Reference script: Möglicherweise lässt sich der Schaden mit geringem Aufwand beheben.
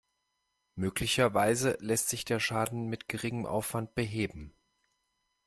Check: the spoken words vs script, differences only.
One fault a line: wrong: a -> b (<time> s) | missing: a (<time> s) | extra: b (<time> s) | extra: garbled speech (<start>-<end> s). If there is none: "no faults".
no faults